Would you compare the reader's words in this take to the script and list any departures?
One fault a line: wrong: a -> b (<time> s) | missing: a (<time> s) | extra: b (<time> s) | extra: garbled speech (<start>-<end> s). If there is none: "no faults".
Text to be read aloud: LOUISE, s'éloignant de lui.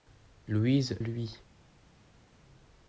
missing: s'éloignant de (1.0 s)